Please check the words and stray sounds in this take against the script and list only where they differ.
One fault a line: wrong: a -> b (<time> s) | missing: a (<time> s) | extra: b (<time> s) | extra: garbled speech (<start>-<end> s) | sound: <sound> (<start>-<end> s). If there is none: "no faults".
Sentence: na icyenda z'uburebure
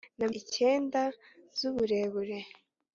no faults